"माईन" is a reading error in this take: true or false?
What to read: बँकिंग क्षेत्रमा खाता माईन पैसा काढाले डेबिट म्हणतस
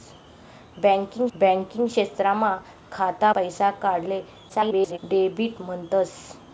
true